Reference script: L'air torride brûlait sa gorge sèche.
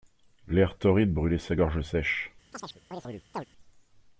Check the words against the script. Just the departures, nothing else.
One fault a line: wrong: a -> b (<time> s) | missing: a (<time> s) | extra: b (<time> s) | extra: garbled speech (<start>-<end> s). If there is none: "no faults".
no faults